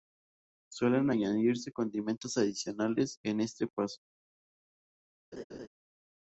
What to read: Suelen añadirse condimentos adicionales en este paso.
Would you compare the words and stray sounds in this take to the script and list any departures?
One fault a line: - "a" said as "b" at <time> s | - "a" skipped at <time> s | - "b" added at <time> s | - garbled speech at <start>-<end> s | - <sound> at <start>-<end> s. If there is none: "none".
- laugh at 5.3-5.7 s